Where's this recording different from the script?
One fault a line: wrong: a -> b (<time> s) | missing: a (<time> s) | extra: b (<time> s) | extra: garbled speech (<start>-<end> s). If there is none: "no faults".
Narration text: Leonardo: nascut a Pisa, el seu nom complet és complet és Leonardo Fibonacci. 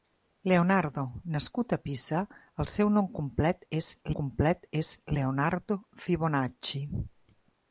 no faults